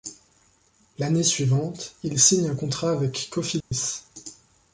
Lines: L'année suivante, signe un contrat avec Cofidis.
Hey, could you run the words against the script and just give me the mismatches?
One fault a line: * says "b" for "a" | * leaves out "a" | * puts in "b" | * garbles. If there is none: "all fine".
* puts in "il"